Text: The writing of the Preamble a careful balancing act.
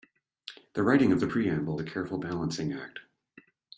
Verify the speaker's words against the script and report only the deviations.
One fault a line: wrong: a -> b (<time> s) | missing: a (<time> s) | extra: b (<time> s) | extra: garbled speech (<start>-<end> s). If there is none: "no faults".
no faults